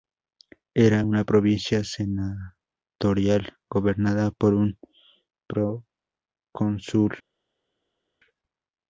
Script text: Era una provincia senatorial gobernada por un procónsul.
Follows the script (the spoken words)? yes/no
yes